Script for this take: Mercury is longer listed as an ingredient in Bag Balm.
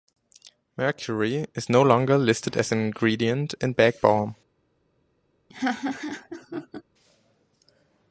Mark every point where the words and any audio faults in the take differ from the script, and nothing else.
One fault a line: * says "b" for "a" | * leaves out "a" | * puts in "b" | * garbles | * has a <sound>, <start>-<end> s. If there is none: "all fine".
* puts in "no"
* has a laugh, 5.5-6.8 s